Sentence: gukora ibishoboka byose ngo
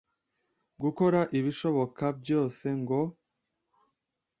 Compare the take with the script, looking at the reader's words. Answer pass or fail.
pass